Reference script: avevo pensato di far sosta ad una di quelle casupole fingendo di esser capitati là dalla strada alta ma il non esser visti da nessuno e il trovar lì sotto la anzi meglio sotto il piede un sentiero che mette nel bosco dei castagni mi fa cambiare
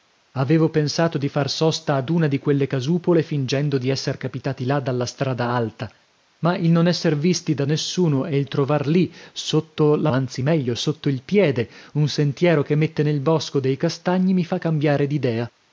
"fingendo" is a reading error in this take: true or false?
false